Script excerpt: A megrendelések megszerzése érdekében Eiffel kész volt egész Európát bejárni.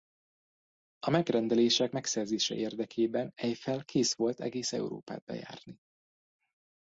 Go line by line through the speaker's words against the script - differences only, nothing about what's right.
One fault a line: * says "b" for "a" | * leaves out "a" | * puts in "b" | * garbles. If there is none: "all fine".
all fine